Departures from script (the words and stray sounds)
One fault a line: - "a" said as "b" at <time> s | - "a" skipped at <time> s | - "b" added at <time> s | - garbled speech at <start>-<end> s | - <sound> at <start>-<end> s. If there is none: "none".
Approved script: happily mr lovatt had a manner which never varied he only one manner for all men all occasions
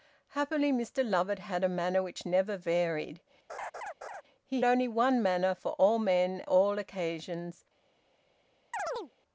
- laugh at 3.5-4.2 s
- chirp at 8.7-9.1 s